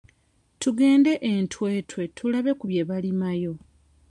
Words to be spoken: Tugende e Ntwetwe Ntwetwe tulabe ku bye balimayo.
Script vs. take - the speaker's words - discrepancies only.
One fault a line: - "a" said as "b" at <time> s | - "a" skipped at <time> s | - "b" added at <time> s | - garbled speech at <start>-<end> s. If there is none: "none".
- "Ntwetwe" skipped at 2.0 s